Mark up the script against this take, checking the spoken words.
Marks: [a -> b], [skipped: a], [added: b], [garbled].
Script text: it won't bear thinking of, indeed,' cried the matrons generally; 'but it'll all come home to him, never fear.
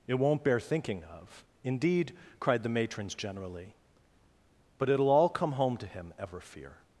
it won't bear thinking of, indeed,' cried the matrons generally; 'but it'll all come home to him, [never -> ever] fear.